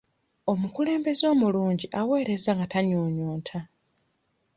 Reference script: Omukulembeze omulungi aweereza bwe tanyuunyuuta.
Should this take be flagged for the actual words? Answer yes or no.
yes